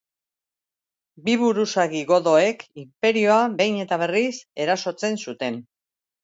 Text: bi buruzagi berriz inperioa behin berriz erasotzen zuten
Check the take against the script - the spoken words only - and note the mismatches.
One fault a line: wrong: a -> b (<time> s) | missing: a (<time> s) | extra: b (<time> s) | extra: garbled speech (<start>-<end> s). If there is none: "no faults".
wrong: berriz -> godoek (2.1 s)
extra: eta (3.8 s)